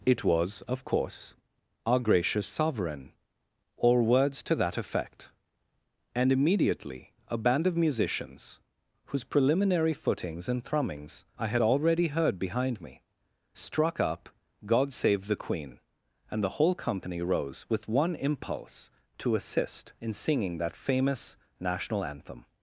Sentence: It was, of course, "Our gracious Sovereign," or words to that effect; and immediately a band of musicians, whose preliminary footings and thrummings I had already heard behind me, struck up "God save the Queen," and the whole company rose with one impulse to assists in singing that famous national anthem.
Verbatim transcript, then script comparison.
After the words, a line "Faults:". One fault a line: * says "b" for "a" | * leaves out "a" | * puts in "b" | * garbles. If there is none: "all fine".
It was, of course, "Our gracious Sovereign," or words to that effect; and immediately a band of musicians, whose preliminary footings and thrummings I had already heard behind me, struck up "God save the Queen," and the whole company rose with one impulse to assist in singing that famous national anthem.
Faults:
* says "assist" for "assists"